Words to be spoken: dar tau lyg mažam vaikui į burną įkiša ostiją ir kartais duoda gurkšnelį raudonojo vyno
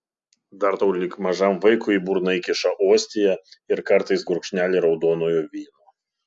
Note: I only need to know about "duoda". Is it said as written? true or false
false